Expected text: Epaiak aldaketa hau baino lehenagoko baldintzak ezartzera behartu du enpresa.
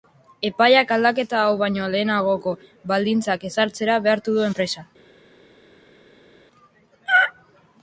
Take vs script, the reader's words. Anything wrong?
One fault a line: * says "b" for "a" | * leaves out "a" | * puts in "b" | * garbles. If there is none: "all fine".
all fine